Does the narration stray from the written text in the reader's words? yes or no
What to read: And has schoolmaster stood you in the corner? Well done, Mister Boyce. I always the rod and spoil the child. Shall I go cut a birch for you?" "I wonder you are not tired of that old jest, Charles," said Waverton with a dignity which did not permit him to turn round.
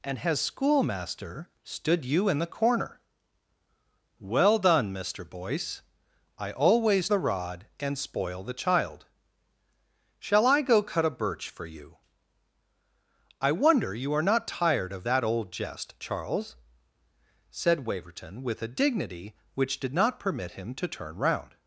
no